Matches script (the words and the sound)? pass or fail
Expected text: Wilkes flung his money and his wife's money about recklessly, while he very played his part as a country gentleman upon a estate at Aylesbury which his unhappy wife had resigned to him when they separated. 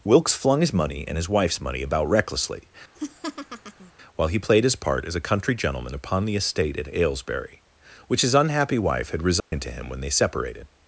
fail